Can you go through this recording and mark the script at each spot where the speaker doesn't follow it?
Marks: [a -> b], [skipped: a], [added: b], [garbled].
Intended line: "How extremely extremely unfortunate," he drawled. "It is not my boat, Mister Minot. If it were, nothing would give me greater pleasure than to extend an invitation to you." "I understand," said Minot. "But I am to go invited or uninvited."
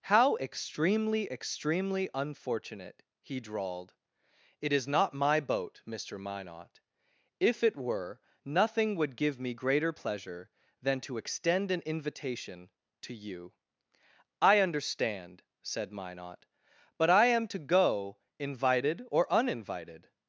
"How extremely extremely unfortunate," he drawled. "It is not my boat, Mister Minot. If it were, nothing would give me greater pleasure than to extend an invitation to you." "I understand," said Minot. "But I am to go invited or uninvited."